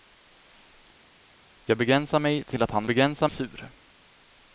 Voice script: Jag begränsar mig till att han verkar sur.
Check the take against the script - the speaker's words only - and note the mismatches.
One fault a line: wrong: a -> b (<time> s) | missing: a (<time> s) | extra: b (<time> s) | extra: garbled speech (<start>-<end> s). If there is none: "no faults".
wrong: verkar -> begränsar (2.9 s)